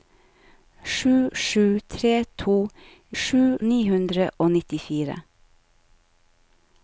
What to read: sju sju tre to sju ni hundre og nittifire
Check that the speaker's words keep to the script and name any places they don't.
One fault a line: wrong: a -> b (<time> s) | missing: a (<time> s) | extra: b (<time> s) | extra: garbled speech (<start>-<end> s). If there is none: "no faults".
no faults